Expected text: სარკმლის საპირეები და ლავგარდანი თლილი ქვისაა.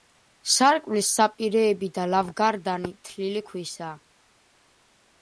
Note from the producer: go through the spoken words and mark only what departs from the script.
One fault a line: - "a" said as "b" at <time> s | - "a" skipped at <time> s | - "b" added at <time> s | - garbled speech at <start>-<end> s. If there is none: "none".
none